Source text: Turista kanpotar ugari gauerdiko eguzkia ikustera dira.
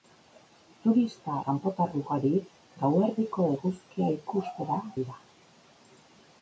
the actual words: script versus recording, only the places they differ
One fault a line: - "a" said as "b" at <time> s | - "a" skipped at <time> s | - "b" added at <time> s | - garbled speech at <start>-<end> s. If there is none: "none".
none